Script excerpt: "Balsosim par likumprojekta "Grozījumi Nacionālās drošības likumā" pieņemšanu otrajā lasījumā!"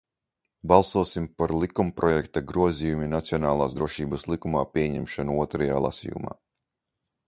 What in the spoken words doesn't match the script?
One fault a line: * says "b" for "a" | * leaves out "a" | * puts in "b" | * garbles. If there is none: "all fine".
all fine